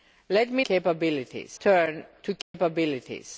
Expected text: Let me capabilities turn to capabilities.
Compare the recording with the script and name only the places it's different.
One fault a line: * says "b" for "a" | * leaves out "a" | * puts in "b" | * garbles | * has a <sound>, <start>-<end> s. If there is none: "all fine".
* has a dropout, 2.4-2.5 s